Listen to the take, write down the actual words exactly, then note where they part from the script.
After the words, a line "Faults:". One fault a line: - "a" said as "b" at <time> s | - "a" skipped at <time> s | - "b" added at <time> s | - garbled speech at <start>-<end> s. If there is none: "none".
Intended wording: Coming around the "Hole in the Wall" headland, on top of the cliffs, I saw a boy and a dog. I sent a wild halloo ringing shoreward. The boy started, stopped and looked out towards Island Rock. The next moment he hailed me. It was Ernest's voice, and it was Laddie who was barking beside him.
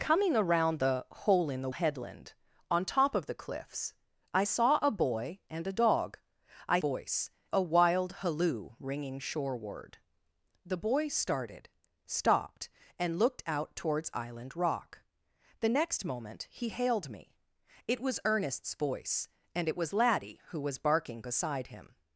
Coming around the "Hole in the" Headland, on top of the cliffs, I saw a boy and a dog. I voice a wild halloo ringing shoreward. The boy started, stopped and looked out towards Island Rock. The next moment he hailed me. It was Ernest's voice, and it was Laddie who was barking beside him.
Faults:
- "Wall" skipped at 1.7 s
- "sent" said as "voice" at 6.8 s